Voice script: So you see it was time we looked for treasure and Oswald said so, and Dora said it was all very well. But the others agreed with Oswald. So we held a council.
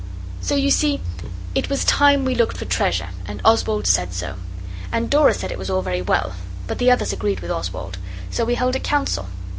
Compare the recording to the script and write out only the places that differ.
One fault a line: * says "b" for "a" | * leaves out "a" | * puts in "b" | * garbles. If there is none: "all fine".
all fine